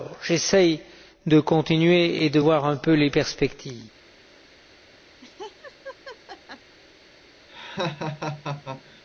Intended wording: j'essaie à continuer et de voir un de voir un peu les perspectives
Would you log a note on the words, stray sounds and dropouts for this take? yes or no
yes